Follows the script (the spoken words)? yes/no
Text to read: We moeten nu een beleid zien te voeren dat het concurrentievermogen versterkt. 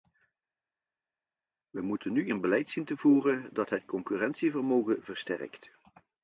yes